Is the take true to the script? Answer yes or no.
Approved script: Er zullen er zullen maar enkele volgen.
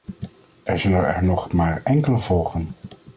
no